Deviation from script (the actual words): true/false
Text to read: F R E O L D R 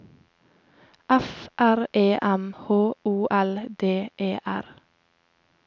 true